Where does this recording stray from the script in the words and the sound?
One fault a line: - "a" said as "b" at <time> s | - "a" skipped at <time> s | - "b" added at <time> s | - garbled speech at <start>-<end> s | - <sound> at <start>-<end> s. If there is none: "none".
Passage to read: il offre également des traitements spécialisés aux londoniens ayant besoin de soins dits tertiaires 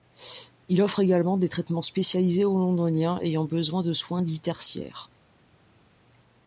none